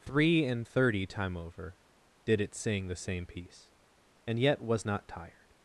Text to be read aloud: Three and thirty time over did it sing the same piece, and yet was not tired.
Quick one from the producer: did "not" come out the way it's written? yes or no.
yes